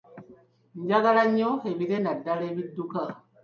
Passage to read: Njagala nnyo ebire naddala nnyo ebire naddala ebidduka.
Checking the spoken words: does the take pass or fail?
fail